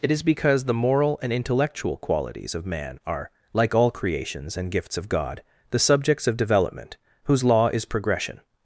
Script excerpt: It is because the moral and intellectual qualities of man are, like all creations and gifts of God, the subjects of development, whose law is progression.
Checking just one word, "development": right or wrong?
right